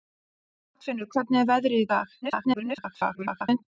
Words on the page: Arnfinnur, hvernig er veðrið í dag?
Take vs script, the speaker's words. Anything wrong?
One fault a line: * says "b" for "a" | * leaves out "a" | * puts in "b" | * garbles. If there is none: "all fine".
* garbles